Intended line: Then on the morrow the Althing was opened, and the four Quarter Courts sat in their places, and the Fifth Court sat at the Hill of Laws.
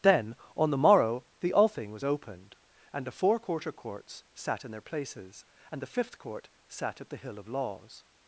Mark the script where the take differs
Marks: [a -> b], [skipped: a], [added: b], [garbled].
Then on the morrow the Althing was opened, and the four Quarter Courts sat in their places, and the Fifth Court sat at the Hill of Laws.